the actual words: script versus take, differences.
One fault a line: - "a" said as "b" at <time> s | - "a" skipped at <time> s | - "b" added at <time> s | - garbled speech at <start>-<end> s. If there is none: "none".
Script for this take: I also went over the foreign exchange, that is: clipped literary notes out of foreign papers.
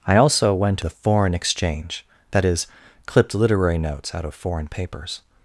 - "over" skipped at 0.8 s